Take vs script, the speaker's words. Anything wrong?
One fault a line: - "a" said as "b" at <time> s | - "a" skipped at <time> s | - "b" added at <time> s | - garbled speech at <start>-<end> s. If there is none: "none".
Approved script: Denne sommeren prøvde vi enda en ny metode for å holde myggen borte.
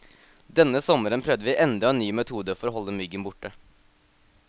none